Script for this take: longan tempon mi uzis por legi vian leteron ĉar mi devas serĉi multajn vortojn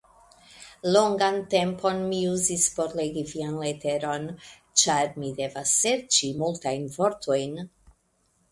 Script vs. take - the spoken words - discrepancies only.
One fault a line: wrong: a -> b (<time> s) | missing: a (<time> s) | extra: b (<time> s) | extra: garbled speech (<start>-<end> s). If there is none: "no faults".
no faults